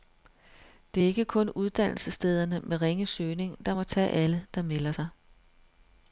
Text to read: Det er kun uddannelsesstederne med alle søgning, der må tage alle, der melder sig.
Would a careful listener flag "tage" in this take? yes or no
no